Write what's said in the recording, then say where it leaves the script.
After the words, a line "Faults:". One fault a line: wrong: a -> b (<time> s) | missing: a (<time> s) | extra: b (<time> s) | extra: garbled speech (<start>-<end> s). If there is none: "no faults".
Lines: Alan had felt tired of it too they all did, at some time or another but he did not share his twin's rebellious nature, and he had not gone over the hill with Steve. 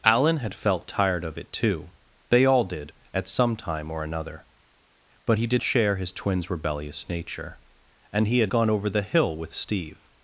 Alan had felt tired of it too they all did, at some time or another but he did share his twin's rebellious nature, and he had gone over the hill with Steve.
Faults:
missing: not (5.6 s)
missing: not (8.5 s)